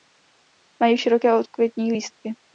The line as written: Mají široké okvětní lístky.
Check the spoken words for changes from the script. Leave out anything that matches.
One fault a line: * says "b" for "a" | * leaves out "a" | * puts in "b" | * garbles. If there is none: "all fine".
all fine